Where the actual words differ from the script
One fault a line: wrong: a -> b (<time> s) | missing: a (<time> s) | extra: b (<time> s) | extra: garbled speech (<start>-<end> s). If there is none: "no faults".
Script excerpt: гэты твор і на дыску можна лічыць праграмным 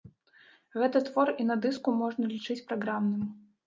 no faults